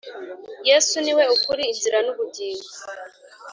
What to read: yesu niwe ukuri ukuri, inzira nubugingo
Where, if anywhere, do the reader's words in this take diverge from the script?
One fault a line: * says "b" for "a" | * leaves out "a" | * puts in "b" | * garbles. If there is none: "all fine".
* leaves out "ukuri"